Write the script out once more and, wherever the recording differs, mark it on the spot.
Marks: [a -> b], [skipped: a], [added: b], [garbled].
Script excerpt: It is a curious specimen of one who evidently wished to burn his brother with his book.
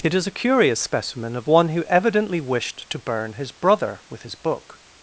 It is a curious specimen of one who evidently wished to burn his brother with his book.